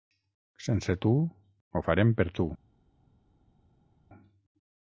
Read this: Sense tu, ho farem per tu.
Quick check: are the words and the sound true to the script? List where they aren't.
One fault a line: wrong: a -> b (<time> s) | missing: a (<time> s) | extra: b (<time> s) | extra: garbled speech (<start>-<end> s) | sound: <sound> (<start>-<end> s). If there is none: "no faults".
no faults